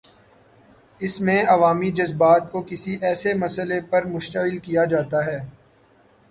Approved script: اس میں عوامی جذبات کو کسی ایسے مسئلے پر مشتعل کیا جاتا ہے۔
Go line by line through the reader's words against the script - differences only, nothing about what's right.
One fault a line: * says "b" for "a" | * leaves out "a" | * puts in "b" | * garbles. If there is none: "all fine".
all fine